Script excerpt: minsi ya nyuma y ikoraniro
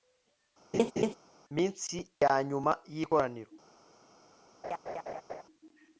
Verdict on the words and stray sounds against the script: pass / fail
fail